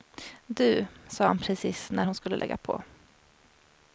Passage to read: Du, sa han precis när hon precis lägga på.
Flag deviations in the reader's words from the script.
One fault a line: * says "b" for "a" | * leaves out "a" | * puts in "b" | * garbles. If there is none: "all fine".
* says "skulle" for "precis"